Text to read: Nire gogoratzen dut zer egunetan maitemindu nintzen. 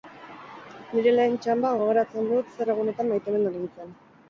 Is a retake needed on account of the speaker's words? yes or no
yes